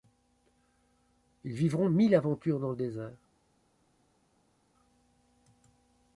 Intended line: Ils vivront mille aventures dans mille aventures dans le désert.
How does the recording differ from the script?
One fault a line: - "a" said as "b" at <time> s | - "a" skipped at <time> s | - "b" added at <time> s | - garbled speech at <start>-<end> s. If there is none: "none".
- "mille aventures dans" skipped at 2.7 s